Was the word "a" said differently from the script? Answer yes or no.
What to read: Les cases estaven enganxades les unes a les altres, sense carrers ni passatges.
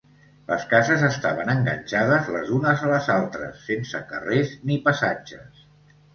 no